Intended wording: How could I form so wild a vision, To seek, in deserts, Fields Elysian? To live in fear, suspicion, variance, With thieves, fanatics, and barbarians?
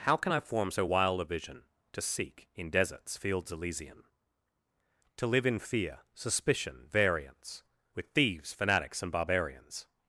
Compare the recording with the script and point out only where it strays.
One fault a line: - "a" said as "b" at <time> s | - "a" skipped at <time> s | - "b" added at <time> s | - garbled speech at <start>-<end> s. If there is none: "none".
- "could" said as "can" at 0.2 s